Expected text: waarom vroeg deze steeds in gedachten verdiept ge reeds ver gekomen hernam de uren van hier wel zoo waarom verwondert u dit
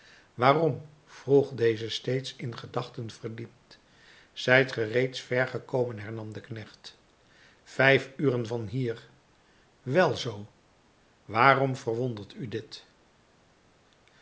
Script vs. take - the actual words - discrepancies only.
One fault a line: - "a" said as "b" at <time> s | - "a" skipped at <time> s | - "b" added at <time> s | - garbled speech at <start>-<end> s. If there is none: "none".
- "zijt" added at 4.3 s
- "knecht vijf" added at 6.4 s